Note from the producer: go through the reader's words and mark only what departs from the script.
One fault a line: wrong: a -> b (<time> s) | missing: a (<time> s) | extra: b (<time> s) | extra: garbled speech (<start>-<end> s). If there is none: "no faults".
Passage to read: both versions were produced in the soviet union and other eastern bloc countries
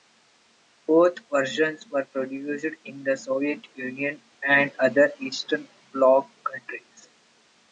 no faults